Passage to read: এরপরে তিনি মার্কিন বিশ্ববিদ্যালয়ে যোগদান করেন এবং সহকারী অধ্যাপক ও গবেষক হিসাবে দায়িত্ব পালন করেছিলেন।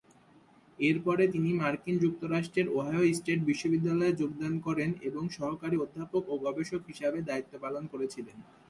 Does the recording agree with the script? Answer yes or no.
no